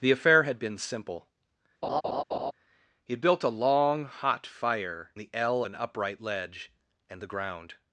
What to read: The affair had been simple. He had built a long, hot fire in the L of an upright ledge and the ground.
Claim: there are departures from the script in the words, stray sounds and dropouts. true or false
true